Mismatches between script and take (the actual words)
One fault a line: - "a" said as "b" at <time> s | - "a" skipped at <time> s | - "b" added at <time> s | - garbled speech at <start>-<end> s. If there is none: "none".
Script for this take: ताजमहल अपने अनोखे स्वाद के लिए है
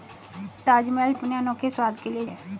none